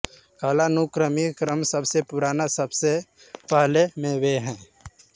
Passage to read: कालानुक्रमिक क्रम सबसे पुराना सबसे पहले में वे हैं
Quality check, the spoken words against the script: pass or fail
pass